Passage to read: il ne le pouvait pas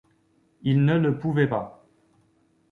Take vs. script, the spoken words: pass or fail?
pass